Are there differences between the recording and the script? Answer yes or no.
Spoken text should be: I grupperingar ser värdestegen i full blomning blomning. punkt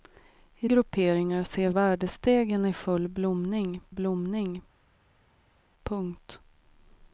no